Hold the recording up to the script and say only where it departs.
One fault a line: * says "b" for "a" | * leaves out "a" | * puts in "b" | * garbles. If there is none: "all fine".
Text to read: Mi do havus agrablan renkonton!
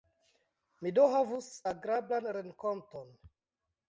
all fine